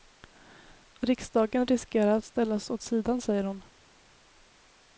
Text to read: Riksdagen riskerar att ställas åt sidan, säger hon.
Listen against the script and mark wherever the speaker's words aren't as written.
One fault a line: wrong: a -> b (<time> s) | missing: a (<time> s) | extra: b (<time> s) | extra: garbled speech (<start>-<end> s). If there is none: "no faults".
no faults